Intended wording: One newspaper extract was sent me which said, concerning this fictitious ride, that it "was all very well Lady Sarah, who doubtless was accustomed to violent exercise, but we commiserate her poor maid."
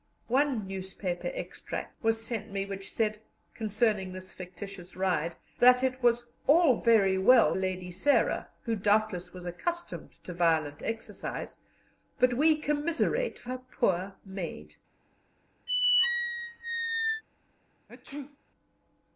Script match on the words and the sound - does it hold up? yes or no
no